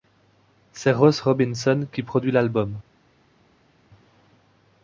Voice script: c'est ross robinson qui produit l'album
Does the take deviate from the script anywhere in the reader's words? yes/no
no